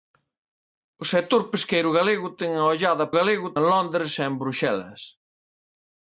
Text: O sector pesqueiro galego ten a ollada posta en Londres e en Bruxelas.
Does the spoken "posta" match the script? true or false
false